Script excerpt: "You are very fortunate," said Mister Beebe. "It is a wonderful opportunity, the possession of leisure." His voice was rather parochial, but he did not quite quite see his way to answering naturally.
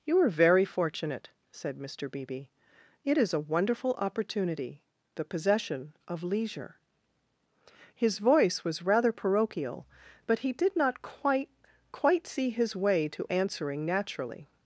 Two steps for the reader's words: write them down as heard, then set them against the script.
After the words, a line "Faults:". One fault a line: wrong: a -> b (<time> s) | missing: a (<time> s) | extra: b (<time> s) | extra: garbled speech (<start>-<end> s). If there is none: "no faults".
"You are very fortunate," said Mister Beebe. "It is a wonderful opportunity, the possession of leisure." His voice was rather parochial, but he did not quite quite see his way to answering naturally.
Faults:
no faults